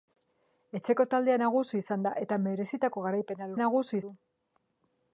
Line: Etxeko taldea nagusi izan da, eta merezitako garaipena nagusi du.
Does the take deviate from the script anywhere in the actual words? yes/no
no